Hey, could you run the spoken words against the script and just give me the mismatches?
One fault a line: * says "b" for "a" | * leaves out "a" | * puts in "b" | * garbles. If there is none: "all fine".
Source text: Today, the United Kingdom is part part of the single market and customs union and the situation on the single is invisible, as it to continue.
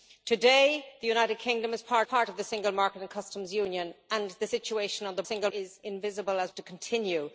all fine